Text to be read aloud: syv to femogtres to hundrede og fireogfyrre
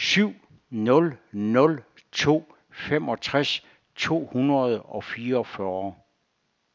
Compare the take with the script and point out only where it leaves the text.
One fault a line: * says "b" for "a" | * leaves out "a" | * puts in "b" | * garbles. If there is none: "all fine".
* puts in "nul nul"